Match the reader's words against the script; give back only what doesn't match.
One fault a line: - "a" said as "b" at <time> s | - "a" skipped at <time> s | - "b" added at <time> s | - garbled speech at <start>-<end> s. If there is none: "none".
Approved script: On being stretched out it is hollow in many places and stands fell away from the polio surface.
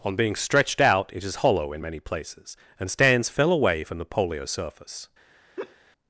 none